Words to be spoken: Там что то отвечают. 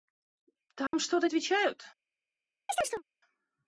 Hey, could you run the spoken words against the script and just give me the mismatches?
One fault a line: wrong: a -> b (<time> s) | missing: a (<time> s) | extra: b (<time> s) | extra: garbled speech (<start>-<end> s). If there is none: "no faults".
no faults